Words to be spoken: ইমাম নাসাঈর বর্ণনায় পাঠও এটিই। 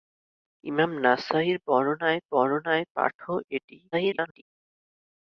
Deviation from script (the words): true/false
true